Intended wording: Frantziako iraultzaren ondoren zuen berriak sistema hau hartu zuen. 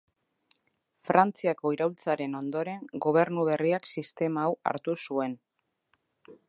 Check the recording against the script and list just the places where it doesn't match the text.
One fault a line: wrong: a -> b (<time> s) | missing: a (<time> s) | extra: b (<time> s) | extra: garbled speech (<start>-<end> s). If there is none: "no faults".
wrong: zuen -> gobernu (3.1 s)